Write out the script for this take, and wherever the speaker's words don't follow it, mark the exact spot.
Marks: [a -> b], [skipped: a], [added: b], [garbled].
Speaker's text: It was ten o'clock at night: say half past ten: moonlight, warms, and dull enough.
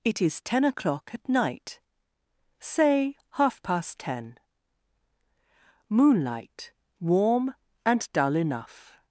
It [was -> is] ten o'clock at night: say half past ten: moonlight, [warms, -> warm] and dull enough.